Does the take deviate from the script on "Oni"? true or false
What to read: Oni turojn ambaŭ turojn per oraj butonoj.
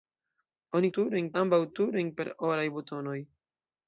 false